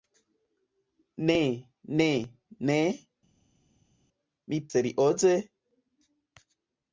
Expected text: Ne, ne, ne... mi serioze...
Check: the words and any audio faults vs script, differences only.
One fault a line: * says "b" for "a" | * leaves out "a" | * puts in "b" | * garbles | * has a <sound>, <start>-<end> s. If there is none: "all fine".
all fine